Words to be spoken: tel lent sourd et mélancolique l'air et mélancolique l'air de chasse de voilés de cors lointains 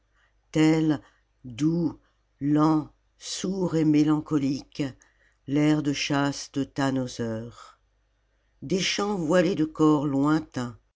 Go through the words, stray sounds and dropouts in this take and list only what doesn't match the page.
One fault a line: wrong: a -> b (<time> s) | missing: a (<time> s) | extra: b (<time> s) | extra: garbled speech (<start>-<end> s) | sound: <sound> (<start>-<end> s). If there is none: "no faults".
extra: doux (1.4 s)
wrong: et mélancolique l'air de chasse de -> de chasse de tannhauser des chants (5.8 s)